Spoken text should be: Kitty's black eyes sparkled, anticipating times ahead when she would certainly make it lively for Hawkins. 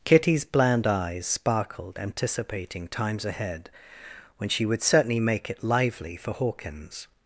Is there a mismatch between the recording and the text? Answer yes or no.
yes